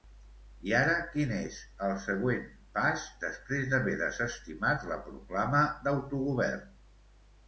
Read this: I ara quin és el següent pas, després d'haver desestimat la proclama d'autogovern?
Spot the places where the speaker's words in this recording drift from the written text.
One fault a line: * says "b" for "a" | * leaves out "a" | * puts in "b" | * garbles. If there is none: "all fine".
all fine